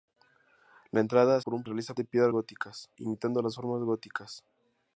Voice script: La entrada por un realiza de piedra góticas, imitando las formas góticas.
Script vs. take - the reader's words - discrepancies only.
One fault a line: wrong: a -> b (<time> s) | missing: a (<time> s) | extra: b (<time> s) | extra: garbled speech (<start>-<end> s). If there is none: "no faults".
no faults